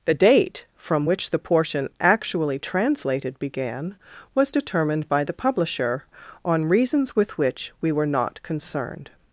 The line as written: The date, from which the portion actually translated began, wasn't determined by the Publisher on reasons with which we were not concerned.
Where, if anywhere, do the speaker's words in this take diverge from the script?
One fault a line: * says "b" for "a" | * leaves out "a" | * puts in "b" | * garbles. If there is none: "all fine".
* says "was" for "wasn't"